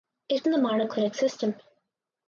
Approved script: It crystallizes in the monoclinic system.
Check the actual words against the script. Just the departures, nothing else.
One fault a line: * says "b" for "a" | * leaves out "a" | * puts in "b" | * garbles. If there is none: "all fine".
* leaves out "crystallizes"